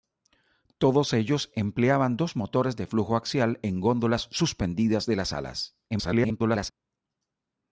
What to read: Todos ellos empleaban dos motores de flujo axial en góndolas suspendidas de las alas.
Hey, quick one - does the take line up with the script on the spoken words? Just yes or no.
no